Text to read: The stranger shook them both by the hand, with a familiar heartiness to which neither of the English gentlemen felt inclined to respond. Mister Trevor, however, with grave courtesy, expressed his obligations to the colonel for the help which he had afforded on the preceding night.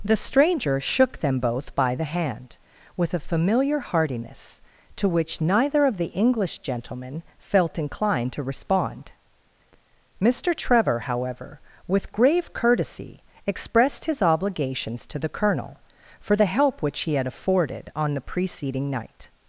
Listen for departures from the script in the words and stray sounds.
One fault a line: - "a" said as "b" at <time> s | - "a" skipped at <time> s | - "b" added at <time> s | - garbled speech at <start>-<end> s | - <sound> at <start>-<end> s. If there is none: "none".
none